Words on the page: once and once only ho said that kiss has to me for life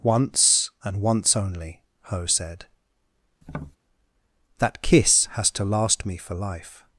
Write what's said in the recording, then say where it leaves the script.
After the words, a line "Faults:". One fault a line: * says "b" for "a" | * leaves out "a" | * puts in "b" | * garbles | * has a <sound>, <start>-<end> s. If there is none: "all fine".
once and once only ho said that kiss has to last me for life
Faults:
* has a tap, 3.4-3.8 s
* puts in "last"